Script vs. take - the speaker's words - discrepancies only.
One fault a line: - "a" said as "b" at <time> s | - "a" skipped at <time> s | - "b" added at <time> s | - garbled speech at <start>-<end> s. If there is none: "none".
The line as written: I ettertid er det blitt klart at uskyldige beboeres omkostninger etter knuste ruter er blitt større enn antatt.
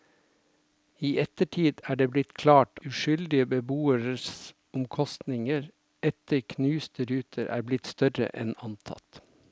- "at" skipped at 2.8 s